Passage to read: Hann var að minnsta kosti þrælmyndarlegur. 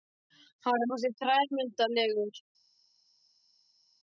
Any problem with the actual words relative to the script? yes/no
yes